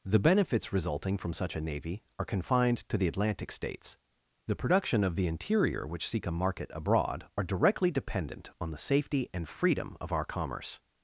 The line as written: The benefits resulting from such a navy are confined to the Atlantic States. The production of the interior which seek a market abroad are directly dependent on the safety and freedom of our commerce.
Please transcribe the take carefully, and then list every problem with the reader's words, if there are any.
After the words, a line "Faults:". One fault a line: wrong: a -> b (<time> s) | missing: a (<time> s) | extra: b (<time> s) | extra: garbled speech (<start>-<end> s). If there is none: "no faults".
The benefits resulting from such a navy are confined to the Atlantic States. The production of the interior which seek a market abroad are directly dependent on the safety and freedom of our commerce.
Faults:
no faults